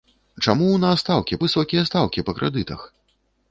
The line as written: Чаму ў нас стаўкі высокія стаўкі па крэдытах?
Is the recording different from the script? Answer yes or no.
no